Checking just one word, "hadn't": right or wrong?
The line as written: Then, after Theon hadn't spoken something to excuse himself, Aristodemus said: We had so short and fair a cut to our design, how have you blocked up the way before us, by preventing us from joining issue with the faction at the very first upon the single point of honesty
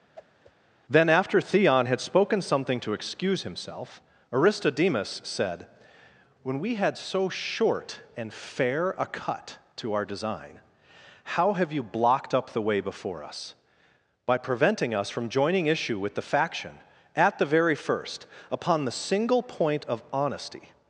wrong